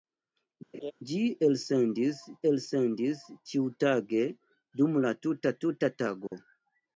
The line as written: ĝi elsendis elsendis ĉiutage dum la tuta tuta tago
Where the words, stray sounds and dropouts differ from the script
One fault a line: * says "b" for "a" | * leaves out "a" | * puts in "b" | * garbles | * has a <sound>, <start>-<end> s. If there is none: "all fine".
* has a laugh, 0.7-0.9 s
* has a dropout, 6.3-6.3 s